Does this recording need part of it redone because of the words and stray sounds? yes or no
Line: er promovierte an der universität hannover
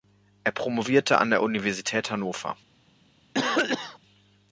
yes